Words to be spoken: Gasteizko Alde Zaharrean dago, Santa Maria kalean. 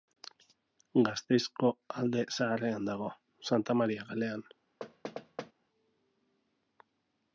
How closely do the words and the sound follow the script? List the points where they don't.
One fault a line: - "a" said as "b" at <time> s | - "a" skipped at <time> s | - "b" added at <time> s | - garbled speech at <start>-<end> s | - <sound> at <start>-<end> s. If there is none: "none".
- thud at 4.8-5.5 s